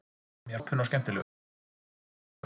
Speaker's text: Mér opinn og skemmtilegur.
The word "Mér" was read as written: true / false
true